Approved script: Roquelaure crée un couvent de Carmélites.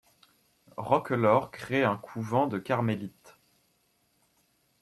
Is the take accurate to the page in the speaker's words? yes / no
yes